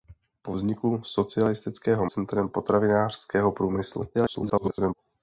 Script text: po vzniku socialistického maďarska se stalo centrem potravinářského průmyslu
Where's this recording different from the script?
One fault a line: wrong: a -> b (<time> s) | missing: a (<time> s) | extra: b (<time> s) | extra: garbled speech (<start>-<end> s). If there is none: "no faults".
missing: maďarska se stalo (2.1 s)
extra: garbled speech (4.1-4.9 s)